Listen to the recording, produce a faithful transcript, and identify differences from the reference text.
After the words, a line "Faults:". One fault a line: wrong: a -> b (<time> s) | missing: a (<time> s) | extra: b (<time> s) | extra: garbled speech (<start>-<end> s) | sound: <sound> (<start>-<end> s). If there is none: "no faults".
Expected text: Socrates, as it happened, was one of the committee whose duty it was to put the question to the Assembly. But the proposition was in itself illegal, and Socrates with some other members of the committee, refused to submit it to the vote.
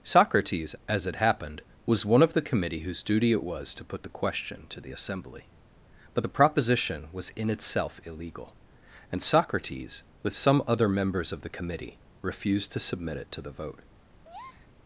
Socrates, as it happened, was one of the committee whose duty it was to put the question to the Assembly. But the proposition was in itself illegal, and Socrates with some other members of the committee, refused to submit it to the vote.
Faults:
sound: breath (14.2-14.7 s)